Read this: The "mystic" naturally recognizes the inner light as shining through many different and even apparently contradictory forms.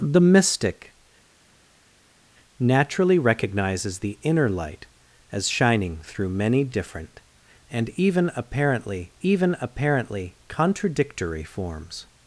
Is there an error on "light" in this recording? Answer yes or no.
no